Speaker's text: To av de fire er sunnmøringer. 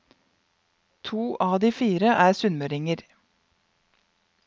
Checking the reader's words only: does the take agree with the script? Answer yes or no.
yes